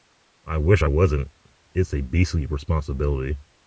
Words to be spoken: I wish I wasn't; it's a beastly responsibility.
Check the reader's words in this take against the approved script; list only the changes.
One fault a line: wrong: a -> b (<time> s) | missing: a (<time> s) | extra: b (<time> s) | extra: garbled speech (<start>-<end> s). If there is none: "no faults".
no faults